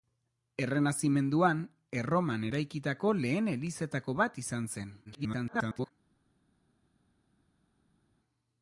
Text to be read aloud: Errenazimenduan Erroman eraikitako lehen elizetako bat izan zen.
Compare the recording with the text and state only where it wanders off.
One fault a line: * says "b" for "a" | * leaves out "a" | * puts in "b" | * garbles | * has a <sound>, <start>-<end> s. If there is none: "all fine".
* garbles